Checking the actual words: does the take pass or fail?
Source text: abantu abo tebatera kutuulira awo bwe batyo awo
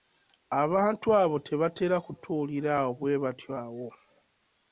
pass